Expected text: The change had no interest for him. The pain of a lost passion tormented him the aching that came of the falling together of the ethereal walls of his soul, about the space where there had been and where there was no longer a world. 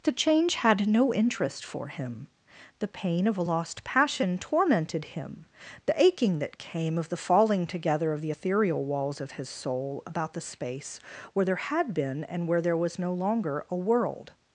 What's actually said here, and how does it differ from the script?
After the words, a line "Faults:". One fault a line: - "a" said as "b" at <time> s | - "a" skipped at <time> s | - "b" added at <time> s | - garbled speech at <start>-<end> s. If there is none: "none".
The change had no interest for him. The pain of a lost passion tormented him the aching that came of the falling together of the ethereal walls of his soul, about the space where there had been and where there was no longer a world.
Faults:
none